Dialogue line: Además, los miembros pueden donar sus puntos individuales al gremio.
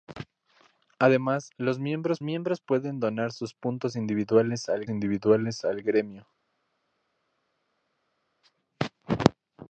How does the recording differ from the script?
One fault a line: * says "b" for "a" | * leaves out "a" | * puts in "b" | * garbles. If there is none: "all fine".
* puts in "miembros"
* puts in "individuales al"